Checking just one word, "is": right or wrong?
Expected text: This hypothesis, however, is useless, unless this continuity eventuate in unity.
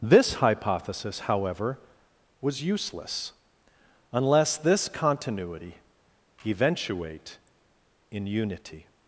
wrong